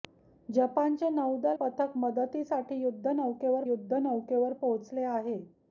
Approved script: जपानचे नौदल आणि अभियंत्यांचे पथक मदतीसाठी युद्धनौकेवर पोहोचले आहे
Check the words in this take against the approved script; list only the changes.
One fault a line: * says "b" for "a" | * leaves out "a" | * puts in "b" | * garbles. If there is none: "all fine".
* leaves out "आणि अभियंत्यांचे"
* puts in "युद्धनौकेवर"